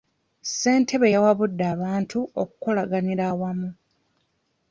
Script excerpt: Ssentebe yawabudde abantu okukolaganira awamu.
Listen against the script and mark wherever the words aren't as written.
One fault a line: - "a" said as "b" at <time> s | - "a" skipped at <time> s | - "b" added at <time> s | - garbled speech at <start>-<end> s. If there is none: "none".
none